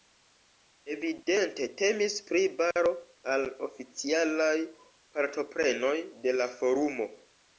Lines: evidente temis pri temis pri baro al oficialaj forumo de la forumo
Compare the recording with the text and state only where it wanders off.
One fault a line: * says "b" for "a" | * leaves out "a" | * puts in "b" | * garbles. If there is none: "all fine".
* leaves out "temis pri"
* says "partoprenoj" for "forumo"